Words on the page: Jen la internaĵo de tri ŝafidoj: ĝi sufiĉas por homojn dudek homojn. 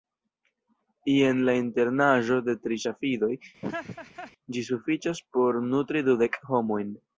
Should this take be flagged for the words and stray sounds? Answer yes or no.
yes